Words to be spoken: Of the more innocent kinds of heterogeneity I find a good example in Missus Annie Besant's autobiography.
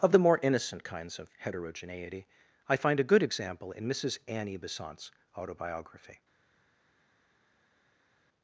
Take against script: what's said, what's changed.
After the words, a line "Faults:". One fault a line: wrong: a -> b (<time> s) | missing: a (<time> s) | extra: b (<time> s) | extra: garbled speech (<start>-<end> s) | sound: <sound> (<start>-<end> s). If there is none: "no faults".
Of the more innocent kinds of heterogeneity I find a good example in Missus Annie Besant's autobiography.
Faults:
no faults